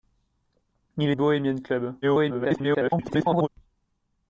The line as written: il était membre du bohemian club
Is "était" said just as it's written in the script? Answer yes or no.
no